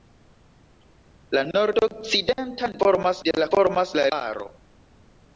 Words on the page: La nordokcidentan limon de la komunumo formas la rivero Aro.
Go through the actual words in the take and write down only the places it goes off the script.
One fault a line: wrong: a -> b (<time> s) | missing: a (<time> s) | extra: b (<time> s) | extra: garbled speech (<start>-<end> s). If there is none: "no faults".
wrong: limon -> formas (2.8 s)
missing: komunumo (3.5 s)
missing: rivero (4.1 s)